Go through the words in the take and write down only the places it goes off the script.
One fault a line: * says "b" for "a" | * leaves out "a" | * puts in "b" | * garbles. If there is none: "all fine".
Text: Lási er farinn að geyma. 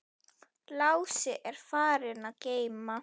all fine